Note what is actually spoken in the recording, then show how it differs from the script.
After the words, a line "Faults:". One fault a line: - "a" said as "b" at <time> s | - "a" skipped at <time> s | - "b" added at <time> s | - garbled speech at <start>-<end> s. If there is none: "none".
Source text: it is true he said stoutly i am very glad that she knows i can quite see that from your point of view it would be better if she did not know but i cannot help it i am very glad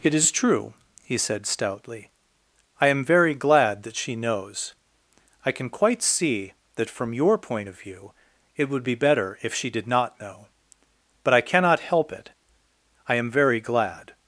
it is true he said stoutly i am very glad that she knows i can quite see that from your point of view it would be better if she did not know but i cannot help it i am very glad
Faults:
none